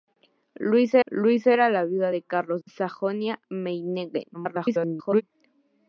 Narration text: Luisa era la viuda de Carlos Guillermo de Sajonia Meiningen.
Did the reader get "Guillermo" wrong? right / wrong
wrong